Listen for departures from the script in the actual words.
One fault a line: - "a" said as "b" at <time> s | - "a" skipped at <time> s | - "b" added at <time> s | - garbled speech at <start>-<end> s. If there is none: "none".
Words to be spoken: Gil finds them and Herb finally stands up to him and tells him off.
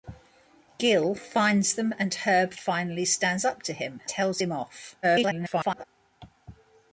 - "and" skipped at 4.0 s
- garbled speech at 5.0-5.8 s